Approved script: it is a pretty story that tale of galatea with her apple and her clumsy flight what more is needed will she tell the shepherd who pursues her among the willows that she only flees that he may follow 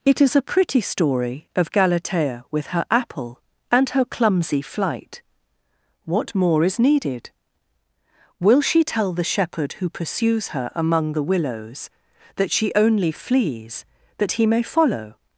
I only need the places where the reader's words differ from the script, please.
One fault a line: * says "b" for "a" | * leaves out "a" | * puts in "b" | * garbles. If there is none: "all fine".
* leaves out "that tale"